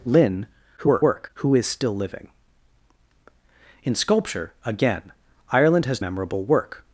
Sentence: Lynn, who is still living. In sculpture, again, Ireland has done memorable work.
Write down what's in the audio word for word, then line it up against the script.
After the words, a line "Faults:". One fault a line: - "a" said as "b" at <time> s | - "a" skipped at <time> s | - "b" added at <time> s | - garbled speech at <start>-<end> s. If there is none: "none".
Lynn, [garbled] who is still living. In sculpture, again, Ireland has memorable work.
Faults:
- garbled speech at 0.8-1.3 s
- "done" skipped at 6.0 s